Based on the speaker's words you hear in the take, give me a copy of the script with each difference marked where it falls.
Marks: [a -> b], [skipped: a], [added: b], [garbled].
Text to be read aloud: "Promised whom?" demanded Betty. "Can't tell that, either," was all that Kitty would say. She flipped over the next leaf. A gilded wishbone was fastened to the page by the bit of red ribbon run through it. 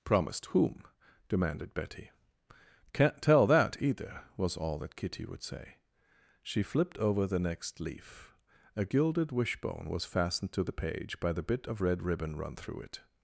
"Promised whom?" demanded Betty. "Can't tell that, either," was all that Kitty would say. She flipped over the next leaf. A gilded wishbone was fastened to the page by the bit of red ribbon run through it.